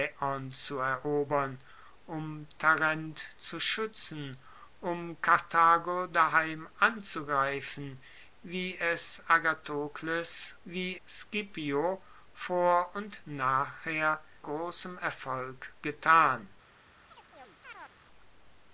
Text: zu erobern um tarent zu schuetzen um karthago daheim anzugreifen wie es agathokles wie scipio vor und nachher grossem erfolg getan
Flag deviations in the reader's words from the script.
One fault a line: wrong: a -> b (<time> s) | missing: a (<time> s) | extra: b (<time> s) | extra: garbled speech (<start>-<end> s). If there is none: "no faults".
no faults